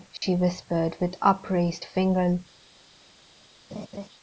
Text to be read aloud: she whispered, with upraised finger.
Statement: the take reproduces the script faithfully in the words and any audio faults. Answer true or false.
false